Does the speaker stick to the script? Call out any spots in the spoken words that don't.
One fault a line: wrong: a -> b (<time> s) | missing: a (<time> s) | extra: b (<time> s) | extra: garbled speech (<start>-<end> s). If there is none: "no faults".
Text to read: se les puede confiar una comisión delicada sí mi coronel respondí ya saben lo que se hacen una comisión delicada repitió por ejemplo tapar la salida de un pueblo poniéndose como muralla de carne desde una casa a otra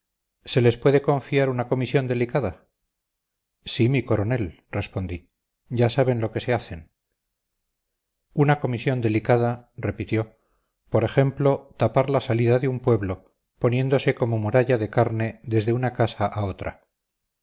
no faults